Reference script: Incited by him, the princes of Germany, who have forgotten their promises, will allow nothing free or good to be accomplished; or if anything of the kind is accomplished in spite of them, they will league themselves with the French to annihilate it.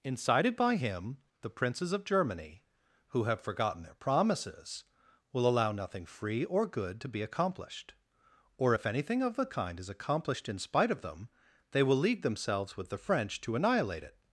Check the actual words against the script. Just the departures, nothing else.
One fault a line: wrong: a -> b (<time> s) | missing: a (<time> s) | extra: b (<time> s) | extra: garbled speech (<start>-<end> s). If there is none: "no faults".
no faults